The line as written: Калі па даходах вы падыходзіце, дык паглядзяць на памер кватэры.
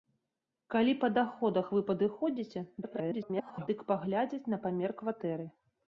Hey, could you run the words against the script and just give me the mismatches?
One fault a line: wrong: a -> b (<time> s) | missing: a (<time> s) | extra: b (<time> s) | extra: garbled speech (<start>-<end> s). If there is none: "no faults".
extra: garbled speech (2.8-3.7 s)